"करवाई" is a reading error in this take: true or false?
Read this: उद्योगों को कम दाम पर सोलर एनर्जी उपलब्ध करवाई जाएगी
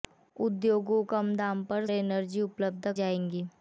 true